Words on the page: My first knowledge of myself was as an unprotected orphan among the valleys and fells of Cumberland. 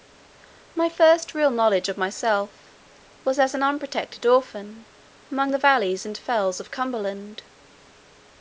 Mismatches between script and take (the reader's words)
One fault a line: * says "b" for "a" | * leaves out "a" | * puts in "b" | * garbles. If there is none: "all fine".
* puts in "real"